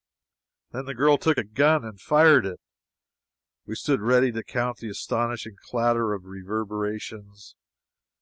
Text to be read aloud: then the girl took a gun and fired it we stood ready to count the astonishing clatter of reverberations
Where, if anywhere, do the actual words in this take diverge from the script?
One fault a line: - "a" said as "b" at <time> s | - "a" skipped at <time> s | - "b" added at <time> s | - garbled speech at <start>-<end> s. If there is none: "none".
none